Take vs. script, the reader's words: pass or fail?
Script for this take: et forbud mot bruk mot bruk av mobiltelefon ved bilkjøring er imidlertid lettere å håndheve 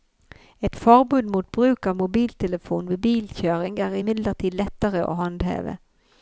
fail